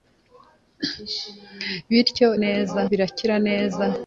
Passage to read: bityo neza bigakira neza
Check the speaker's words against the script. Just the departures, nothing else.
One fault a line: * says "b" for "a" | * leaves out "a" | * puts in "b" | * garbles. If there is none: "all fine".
all fine